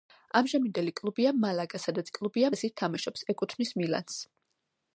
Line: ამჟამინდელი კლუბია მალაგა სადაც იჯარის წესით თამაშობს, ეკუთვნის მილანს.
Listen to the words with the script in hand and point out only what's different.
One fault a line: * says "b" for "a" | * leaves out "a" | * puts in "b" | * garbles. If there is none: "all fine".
* says "კლუბია" for "იჯარის"